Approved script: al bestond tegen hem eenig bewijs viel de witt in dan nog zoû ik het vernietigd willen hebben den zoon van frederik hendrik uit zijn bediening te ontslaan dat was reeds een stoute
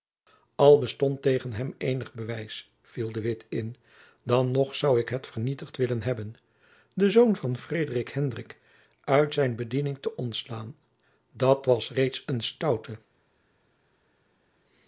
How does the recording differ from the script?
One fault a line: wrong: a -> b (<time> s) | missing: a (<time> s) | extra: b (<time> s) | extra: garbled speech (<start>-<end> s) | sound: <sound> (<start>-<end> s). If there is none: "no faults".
no faults